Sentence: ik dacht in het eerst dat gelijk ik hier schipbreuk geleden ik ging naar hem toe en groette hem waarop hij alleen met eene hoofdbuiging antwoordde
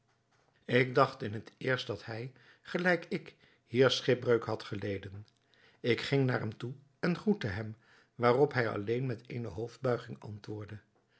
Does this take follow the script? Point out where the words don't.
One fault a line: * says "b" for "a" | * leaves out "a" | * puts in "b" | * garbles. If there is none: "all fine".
* puts in "hij"
* puts in "had"